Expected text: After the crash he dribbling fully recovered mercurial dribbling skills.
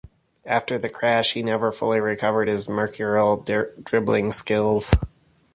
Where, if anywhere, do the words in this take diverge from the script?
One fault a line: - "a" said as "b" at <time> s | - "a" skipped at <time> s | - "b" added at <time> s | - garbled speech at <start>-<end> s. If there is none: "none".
- "dribbling" said as "never" at 1.4 s
- "his" added at 2.5 s